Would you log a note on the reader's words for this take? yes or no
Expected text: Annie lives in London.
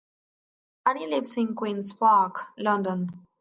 yes